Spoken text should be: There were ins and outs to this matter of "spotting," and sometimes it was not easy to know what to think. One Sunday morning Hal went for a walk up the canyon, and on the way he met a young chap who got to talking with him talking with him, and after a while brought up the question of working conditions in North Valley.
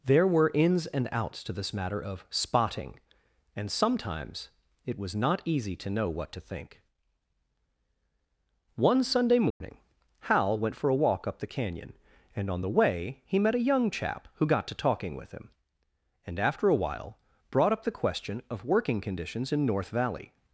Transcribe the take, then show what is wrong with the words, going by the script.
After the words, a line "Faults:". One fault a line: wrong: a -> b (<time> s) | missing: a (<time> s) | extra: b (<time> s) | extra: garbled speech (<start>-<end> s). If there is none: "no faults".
There were ins and outs to this matter of "spotting," and sometimes it was not easy to know what to think. One Sunday morning Hal went for a walk up the canyon, and on the way he met a young chap who got to talking with him, and after a while brought up the question of working conditions in North Valley.
Faults:
missing: talking with him (15.5 s)